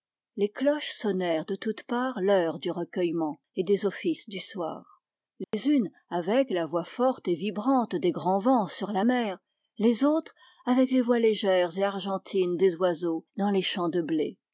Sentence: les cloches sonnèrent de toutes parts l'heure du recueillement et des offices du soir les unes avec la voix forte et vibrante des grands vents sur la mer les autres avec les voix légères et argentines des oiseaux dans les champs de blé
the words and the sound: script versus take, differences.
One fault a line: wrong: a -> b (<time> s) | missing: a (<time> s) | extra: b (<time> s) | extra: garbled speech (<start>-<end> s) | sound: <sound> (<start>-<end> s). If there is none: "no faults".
sound: dropout (5.4-5.5 s)